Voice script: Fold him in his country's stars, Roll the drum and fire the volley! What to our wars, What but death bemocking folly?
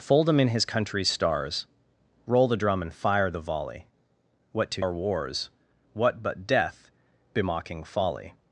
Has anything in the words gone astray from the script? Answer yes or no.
no